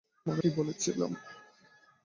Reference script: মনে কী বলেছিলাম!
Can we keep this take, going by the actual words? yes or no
yes